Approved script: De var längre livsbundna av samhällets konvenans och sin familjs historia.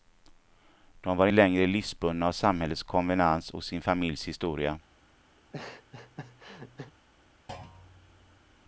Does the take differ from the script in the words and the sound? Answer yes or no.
yes